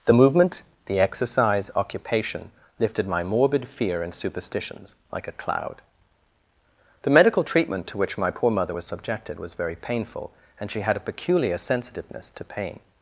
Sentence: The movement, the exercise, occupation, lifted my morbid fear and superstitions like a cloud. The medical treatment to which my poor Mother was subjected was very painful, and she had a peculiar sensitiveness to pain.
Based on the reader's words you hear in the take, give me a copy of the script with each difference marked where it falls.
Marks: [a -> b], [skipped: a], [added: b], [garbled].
The movement, the exercise, occupation, lifted my morbid fear and superstitions like a cloud. The medical treatment to which my poor Mother was subjected was very painful, and she had a peculiar sensitiveness to pain.